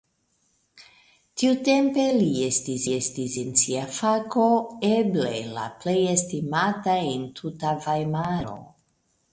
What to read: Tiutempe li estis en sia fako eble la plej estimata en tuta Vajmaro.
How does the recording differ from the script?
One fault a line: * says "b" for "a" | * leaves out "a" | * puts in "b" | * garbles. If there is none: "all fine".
* puts in "estis"